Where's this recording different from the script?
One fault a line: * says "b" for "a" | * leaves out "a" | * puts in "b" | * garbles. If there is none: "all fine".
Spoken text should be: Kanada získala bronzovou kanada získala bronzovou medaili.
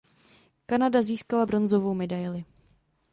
* leaves out "kanada získala bronzovou"